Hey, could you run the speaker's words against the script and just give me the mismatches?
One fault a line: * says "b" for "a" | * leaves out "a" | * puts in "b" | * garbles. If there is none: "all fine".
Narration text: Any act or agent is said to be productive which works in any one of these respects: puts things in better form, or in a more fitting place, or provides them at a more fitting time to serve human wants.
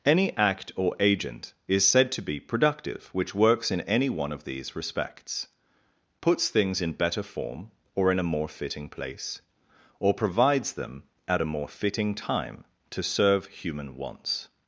all fine